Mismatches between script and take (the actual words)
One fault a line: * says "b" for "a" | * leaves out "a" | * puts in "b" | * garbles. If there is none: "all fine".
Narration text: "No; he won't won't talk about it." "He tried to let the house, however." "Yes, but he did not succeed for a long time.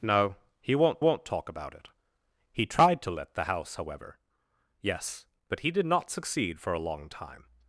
all fine